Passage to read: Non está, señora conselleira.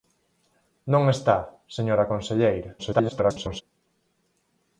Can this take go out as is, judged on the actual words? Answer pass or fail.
fail